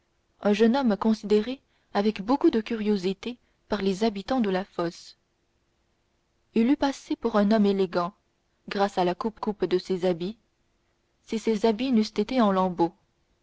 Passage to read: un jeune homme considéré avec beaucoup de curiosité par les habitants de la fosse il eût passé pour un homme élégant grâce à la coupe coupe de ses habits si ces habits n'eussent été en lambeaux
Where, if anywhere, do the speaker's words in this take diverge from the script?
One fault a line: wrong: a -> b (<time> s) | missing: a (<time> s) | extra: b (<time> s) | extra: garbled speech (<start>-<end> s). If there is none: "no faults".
no faults